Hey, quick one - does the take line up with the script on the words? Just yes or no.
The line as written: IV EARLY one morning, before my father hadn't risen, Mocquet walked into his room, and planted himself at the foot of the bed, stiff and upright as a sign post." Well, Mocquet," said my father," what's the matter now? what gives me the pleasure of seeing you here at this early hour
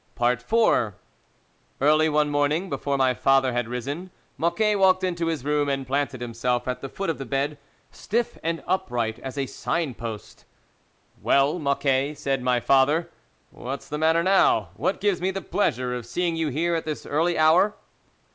no